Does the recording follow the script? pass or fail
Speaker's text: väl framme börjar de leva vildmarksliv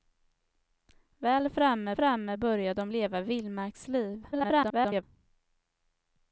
fail